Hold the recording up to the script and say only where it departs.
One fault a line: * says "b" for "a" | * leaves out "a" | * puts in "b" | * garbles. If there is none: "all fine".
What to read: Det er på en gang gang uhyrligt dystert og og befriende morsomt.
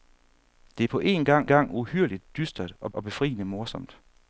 all fine